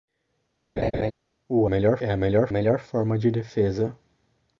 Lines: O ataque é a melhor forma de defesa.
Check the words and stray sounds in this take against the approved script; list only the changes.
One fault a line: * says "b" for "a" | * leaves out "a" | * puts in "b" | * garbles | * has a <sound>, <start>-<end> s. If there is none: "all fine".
* has a laugh, 0.8-1.1 s
* says "melhor" for "ataque"
* puts in "melhor"